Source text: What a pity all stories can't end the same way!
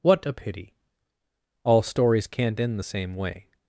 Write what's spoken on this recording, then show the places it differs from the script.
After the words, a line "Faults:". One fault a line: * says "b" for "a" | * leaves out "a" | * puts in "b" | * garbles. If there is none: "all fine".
What a pity all stories can't end the same way!
Faults:
all fine